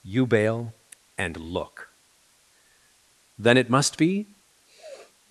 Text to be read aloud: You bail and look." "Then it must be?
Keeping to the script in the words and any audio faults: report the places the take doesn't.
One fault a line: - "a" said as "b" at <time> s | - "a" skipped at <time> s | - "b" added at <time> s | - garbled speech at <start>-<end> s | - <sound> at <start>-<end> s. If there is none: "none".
- sniff at 4.6-5.2 s